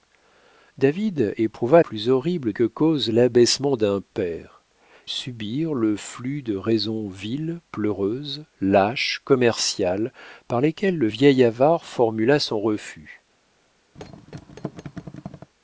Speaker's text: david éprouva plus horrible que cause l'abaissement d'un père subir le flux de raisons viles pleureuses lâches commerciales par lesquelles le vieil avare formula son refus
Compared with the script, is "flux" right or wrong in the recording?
right